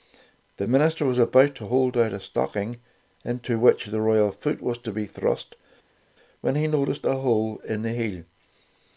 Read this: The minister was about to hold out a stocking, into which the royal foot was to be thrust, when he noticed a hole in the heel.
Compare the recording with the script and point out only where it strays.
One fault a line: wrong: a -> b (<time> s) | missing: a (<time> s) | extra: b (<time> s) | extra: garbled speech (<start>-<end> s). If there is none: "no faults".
no faults